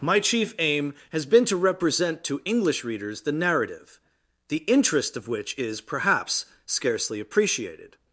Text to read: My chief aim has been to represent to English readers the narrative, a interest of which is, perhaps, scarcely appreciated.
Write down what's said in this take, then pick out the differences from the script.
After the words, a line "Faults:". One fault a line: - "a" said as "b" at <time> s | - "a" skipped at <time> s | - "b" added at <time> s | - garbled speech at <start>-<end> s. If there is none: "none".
My chief aim has been to represent to English readers the narrative, the interest of which is, perhaps, scarcely appreciated.
Faults:
- "a" said as "the" at 4.5 s